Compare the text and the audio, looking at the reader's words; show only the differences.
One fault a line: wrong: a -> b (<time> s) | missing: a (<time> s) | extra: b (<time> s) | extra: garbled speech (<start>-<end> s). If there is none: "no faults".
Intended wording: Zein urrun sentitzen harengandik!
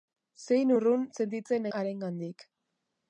no faults